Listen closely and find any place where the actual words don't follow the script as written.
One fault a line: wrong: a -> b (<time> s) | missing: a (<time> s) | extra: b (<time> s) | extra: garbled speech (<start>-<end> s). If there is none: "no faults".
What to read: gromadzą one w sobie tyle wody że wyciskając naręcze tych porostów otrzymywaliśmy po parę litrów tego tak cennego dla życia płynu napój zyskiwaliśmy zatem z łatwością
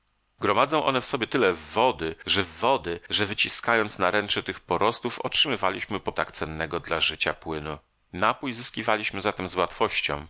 extra: wody że (2.4 s)
missing: parę litrów tego (6.1 s)